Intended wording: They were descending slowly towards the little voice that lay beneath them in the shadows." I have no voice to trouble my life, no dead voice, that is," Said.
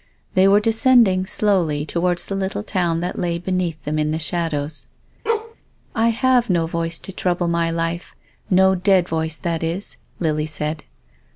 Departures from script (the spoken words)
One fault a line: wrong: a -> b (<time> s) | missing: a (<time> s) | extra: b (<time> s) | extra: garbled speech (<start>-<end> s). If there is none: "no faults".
wrong: voice -> town (2.6 s)
extra: Lily (10.2 s)